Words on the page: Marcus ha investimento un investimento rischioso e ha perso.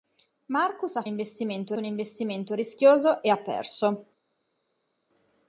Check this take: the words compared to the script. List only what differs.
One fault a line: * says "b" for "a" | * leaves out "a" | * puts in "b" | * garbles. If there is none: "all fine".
all fine